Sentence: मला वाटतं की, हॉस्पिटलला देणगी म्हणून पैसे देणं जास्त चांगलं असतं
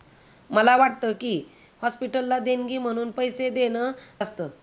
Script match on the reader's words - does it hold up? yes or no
no